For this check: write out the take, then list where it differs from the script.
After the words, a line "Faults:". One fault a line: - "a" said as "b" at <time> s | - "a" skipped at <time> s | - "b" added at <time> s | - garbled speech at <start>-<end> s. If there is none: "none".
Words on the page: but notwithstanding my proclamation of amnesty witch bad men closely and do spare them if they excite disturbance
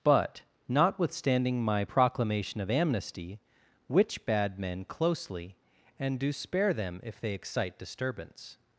but notwithstanding my proclamation of amnesty witch bad men closely and do spare them if they excite disturbance
Faults:
none